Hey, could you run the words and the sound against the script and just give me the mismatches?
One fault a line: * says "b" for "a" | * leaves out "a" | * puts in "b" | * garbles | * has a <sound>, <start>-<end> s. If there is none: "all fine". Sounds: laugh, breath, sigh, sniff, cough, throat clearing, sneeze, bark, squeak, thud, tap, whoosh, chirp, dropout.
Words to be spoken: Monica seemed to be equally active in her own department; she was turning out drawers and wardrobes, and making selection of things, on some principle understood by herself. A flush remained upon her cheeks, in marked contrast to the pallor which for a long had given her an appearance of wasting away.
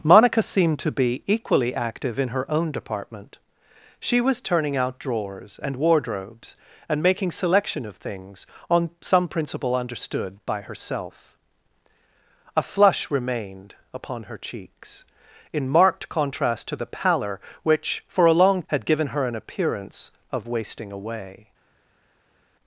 all fine